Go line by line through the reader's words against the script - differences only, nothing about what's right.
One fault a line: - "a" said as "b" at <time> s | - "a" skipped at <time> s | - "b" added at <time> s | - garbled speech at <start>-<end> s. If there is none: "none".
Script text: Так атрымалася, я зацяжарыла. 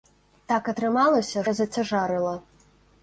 none